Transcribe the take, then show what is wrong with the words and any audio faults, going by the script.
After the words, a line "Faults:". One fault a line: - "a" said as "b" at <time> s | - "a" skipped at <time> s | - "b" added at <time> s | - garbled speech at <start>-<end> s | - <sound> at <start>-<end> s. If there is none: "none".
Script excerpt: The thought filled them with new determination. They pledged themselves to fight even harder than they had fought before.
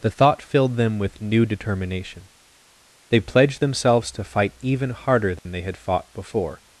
The thought filled them with new determination. They pledged themselves to fight even harder than they had fought before.
Faults:
- dropout at 5.4-5.5 s